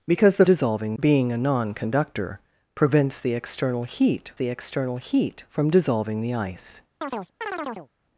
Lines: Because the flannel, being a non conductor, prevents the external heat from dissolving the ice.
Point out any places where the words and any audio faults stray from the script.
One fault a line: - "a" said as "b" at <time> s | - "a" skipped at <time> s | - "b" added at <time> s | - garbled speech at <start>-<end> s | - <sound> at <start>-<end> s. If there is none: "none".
- "flannel" said as "dissolving" at 0.4 s
- "the external heat" added at 4.3 s
- chirp at 7.0-7.9 s